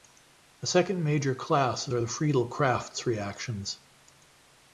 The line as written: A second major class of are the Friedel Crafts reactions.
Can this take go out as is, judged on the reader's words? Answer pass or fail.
pass